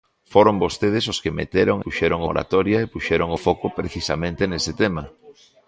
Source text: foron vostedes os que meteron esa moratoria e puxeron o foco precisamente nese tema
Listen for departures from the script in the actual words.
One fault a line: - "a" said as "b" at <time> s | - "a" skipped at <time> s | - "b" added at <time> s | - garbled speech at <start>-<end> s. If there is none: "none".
- "esa" said as "puxeron" at 1.8 s